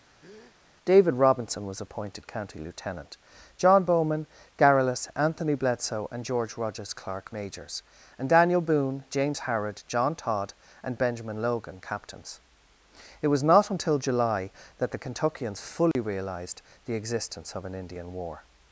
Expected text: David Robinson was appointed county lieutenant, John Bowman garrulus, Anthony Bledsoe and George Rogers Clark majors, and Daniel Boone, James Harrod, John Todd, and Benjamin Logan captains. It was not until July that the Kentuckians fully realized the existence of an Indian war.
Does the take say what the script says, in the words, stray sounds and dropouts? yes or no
no